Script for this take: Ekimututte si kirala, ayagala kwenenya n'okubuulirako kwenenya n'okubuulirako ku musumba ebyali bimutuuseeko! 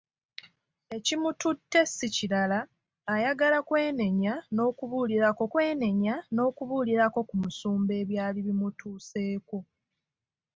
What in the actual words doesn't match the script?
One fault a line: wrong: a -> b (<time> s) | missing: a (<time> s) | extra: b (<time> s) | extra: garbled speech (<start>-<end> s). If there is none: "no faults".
no faults